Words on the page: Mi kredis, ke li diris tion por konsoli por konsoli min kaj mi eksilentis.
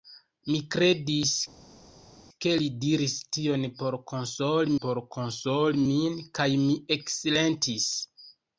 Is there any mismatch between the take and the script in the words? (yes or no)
no